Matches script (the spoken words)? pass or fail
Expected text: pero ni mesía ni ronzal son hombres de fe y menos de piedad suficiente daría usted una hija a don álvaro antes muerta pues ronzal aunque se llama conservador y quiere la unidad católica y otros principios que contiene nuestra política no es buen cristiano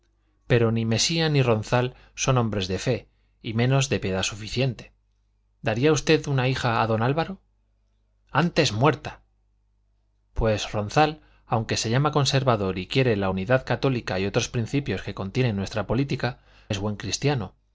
fail